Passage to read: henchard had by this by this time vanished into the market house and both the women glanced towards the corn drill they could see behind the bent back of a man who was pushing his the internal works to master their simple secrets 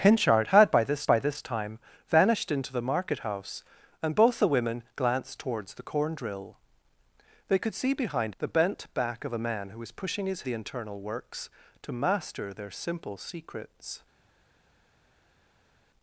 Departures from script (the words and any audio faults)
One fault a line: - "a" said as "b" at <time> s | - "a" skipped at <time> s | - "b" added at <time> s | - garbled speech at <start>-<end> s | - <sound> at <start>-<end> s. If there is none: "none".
none